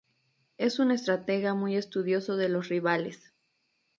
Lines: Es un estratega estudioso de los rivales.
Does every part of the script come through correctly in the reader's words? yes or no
no